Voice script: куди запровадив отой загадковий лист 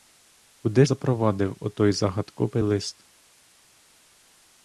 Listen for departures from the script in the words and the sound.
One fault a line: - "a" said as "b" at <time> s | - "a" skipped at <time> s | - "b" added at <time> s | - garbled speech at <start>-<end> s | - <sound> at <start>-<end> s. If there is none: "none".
none